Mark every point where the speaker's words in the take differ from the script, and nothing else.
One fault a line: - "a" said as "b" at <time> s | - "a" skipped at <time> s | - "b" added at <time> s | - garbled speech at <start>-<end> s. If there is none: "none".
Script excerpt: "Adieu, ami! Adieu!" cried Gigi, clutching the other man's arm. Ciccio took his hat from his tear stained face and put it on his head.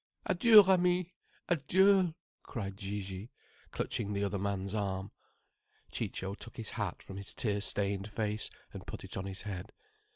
none